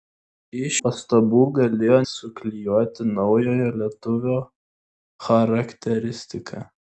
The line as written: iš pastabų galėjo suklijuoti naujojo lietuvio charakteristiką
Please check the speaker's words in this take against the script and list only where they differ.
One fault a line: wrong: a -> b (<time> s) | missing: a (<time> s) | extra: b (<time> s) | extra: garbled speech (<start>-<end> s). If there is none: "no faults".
no faults